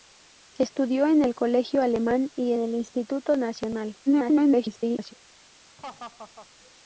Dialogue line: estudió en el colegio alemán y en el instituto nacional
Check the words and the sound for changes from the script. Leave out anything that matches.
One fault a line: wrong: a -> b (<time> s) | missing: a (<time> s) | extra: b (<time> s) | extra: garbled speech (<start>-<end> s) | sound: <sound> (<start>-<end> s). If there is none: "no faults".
extra: garbled speech (4.1-5.1 s)
sound: laugh (5.8-6.5 s)